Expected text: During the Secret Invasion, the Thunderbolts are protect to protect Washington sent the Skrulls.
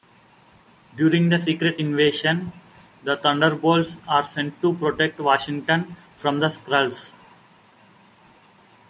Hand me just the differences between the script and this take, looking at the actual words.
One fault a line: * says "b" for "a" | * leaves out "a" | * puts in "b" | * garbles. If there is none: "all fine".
* says "sent" for "protect"
* says "from" for "sent"